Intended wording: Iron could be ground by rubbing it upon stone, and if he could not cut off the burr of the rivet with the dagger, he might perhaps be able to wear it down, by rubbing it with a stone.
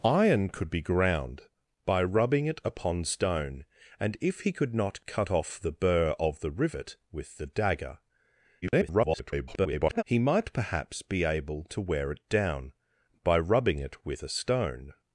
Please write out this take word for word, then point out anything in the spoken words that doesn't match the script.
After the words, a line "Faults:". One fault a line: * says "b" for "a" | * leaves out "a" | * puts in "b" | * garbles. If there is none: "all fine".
Iron could be ground by rubbing it upon stone, and if he could not cut off the burr of the rivet with the dagger, [garbled] he might perhaps be able to wear it down, by rubbing it with a stone.
Faults:
* garbles